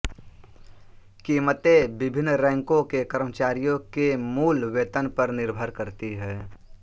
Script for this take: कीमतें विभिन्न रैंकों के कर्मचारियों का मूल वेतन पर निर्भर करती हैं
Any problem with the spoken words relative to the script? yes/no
yes